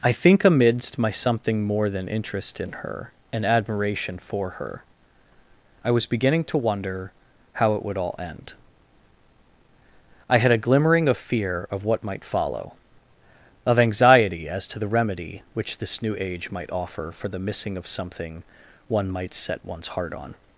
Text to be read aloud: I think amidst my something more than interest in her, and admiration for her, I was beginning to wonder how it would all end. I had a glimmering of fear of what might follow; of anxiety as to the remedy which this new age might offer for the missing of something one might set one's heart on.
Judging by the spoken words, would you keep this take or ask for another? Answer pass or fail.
pass